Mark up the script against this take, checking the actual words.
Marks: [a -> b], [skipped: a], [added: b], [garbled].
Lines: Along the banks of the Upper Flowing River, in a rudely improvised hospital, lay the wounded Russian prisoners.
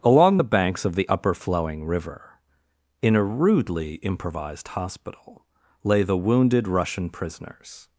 Along the banks of the Upper Flowing River, in a rudely improvised hospital, lay the wounded Russian prisoners.